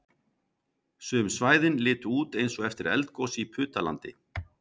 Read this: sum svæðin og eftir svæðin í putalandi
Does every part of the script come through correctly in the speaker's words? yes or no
no